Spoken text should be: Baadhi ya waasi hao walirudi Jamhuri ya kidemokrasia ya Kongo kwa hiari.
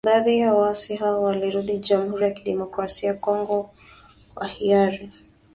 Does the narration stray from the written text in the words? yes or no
no